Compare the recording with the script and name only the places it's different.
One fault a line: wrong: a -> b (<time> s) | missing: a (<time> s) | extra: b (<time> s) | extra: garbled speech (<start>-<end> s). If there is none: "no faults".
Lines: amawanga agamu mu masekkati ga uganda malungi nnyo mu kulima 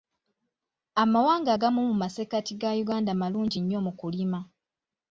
no faults